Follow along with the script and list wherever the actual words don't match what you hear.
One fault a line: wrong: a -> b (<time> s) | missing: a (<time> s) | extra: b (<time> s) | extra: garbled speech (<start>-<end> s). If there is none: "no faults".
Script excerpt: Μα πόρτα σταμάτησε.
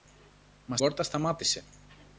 no faults